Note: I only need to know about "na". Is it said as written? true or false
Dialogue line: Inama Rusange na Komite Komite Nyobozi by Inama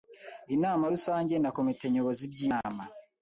true